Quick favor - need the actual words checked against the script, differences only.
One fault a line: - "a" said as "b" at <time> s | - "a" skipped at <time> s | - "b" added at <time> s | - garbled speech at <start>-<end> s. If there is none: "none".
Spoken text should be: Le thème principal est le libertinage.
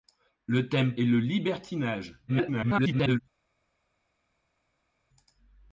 - "principal" skipped at 0.9 s
- garbled speech at 2.3-3.2 s